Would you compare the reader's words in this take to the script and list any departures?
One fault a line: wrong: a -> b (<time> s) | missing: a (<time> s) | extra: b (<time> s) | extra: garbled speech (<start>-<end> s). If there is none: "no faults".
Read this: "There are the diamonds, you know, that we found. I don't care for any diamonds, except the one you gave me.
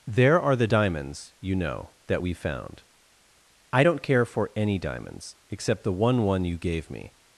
extra: one (6.2 s)